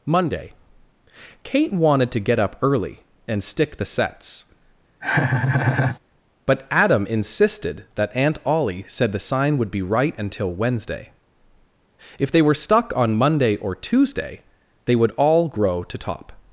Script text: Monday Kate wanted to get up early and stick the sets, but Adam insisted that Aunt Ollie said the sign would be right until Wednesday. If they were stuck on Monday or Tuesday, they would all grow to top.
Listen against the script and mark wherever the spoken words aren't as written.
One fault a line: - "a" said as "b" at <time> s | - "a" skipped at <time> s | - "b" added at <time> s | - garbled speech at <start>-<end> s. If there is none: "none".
none